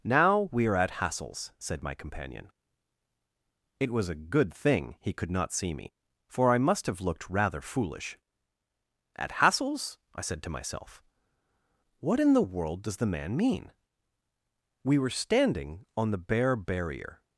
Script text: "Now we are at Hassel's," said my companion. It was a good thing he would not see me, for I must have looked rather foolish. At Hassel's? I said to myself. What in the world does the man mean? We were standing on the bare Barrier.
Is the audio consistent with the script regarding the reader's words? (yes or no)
no